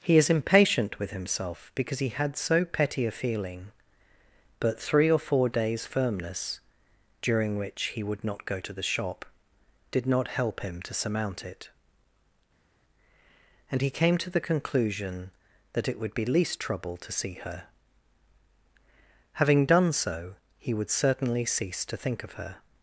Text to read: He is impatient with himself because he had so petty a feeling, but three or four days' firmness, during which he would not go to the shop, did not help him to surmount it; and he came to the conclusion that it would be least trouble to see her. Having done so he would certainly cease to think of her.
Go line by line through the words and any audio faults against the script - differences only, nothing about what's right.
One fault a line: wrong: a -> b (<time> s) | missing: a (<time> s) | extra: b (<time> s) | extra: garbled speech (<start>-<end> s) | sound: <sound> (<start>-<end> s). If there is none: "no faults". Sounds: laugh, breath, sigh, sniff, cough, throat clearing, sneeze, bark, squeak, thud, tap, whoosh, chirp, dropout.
no faults